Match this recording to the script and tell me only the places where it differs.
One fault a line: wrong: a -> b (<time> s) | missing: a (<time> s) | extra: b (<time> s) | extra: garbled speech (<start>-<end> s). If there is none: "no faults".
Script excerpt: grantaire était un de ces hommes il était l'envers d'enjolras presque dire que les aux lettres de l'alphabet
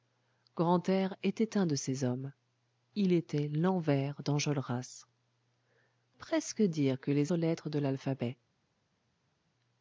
no faults